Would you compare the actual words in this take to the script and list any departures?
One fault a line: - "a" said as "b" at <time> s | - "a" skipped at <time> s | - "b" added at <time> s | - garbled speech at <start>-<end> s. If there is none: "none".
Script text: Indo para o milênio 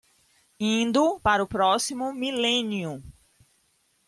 - "próximo" added at 1.5 s